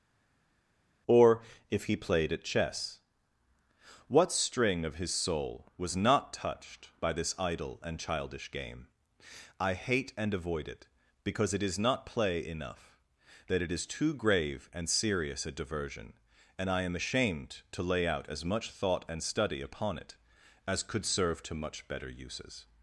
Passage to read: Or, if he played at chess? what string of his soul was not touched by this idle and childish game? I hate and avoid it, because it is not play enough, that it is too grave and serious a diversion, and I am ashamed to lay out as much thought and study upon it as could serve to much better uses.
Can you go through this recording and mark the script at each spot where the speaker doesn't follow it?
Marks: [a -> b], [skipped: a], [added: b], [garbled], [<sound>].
Or, if he played at chess? what string of his soul was not touched by this idle and childish game? I hate and avoid it, because it is not play enough, that it is too grave and serious a diversion, and I am ashamed to lay out as much thought and study upon it as could serve to much better uses.